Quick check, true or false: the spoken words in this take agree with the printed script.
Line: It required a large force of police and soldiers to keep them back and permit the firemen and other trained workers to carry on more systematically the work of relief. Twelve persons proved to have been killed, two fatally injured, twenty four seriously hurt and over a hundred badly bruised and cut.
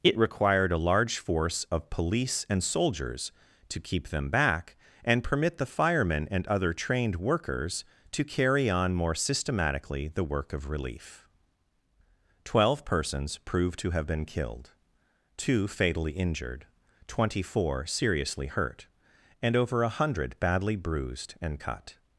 true